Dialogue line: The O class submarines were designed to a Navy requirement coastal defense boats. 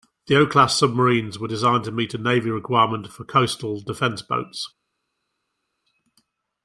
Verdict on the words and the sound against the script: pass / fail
fail